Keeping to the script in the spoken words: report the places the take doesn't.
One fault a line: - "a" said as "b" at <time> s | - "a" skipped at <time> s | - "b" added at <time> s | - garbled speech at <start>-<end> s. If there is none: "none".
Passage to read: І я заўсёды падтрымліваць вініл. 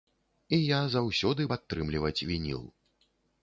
none